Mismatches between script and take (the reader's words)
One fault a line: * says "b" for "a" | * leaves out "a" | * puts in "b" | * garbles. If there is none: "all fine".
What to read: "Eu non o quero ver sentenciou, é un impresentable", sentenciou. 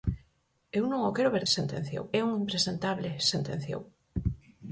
all fine